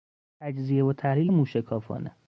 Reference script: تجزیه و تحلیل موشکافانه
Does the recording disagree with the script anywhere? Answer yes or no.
no